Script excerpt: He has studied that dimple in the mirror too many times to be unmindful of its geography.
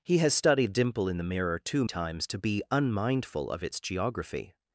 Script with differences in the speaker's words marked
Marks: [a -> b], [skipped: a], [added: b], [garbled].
He has studied [skipped: that] dimple in the mirror too [skipped: many] times to be unmindful of its geography.